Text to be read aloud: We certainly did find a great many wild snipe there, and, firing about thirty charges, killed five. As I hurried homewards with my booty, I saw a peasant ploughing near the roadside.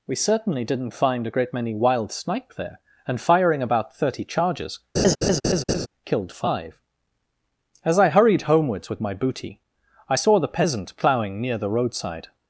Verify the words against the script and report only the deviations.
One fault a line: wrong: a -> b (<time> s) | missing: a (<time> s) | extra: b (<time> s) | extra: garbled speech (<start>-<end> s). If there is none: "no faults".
wrong: did -> didn't (0.6 s)
wrong: a -> the (10.4 s)